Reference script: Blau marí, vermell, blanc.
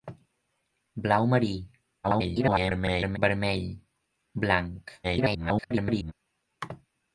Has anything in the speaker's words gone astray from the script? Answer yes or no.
yes